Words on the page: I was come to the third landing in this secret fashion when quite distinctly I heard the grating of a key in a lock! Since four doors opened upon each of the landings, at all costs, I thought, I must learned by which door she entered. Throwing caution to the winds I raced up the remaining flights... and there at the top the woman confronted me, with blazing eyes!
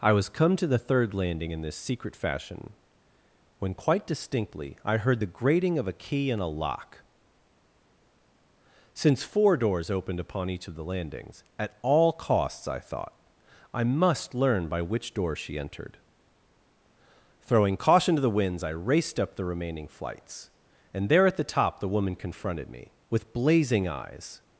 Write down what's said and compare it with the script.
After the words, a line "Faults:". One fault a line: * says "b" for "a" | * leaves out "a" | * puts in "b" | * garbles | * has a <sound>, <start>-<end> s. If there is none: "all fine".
I was come to the third landing in this secret fashion when quite distinctly I heard the grating of a key in a lock! Since four doors opened upon each of the landings, at all costs, I thought, I must learn by which door she entered. Throwing caution to the winds I raced up the remaining flights... and there at the top the woman confronted me, with blazing eyes!
Faults:
* says "learn" for "learned"